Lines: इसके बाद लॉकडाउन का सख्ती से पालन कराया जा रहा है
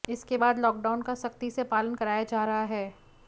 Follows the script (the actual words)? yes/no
yes